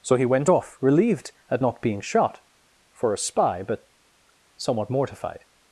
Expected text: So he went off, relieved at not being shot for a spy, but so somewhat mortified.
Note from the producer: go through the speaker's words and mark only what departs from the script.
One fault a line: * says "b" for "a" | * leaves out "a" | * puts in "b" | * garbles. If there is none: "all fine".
* leaves out "so"